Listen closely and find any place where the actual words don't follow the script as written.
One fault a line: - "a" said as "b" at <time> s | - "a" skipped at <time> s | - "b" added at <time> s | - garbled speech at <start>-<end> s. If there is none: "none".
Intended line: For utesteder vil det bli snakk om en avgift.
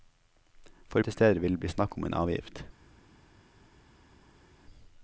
none